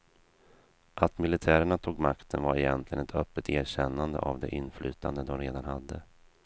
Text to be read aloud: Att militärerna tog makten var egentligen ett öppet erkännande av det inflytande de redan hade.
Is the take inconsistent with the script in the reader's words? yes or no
no